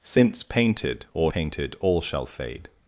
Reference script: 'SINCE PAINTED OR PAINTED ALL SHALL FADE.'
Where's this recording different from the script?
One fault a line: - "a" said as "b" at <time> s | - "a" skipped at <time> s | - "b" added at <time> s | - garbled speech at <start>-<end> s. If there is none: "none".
none